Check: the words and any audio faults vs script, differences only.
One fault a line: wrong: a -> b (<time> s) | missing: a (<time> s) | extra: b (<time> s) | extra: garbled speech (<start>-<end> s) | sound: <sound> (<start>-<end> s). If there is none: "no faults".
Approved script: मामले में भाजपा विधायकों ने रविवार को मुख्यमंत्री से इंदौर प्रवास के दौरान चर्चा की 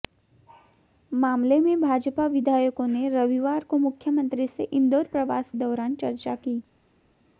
missing: के (5.5 s)